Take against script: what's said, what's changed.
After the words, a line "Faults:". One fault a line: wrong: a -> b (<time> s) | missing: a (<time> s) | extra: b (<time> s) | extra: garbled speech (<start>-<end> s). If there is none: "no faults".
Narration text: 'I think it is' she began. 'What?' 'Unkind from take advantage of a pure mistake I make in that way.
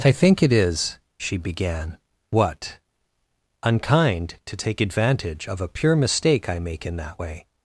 'I think it is' she began. 'What?' 'Unkind to take advantage of a pure mistake I make in that way.
Faults:
wrong: from -> to (4.5 s)